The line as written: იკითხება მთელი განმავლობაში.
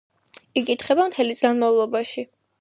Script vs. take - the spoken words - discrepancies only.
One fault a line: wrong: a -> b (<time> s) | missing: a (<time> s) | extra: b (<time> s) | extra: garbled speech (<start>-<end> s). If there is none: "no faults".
no faults